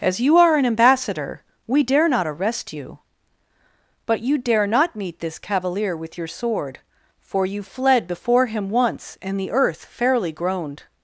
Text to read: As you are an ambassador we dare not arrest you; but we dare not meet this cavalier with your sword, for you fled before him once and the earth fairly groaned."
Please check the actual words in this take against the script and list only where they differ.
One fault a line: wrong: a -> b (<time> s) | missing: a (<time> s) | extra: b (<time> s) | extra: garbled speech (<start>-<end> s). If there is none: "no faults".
wrong: we -> you (4.2 s)